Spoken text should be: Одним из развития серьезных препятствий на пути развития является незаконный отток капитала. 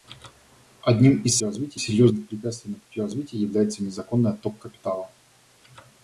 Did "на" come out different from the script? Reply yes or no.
no